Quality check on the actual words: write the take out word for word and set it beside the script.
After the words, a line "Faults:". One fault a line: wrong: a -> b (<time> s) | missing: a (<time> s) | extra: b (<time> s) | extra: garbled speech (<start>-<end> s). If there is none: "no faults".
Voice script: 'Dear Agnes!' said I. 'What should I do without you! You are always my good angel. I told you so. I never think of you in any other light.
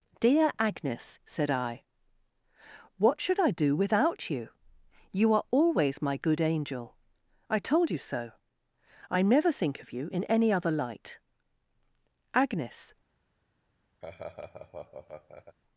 'Dear Agnes!' said I. 'What should I do without you! You are always my good angel. I told you so. I never think of you in any other light. Agnes
Faults:
extra: Agnes (12.3 s)